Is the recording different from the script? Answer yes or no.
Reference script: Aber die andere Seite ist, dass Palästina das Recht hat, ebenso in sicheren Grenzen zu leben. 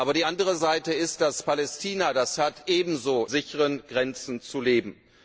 yes